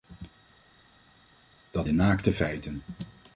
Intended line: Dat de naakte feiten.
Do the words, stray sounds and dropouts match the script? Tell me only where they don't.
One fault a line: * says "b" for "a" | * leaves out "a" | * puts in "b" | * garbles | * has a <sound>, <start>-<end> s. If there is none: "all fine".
all fine